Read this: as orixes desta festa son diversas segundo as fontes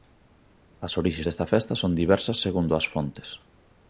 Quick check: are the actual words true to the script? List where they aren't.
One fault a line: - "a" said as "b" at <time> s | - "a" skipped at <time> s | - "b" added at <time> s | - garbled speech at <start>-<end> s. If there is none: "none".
none